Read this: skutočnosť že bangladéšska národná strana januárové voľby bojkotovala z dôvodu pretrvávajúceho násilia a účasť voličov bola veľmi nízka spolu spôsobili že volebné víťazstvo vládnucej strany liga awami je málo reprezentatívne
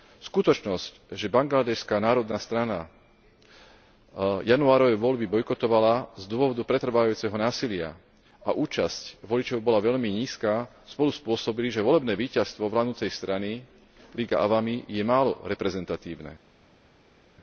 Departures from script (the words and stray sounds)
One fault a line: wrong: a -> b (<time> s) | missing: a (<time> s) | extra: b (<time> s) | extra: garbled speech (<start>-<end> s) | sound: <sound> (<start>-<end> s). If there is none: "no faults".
no faults